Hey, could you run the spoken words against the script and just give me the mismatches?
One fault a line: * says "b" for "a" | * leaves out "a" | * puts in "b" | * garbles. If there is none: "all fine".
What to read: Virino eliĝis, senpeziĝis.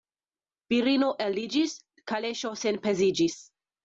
* puts in "kaleŝo"